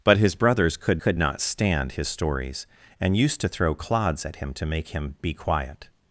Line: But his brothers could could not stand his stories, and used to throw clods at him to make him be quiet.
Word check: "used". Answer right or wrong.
right